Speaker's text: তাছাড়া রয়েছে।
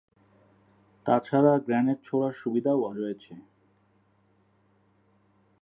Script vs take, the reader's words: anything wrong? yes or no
yes